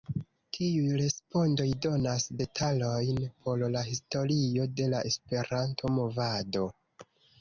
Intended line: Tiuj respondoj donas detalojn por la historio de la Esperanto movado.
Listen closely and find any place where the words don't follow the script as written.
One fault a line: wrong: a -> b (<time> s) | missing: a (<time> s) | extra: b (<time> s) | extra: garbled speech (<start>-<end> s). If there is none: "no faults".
no faults